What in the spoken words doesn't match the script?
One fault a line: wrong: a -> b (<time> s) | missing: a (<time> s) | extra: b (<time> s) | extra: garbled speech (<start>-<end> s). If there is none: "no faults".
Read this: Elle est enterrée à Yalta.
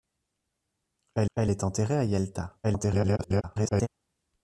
extra: elle (1.3 s)
extra: garbled speech (2.6-3.9 s)